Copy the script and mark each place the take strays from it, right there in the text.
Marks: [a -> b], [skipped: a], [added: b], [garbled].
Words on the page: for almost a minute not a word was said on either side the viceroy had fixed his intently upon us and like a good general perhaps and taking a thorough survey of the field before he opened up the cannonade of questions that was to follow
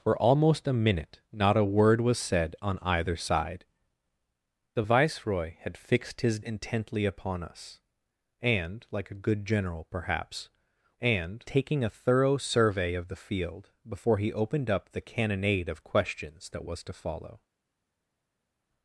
for almost a minute not a word was said on either side the viceroy had fixed his intently upon us and like a good general perhaps and taking a thorough survey of the field before he opened up the cannonade of questions that was to follow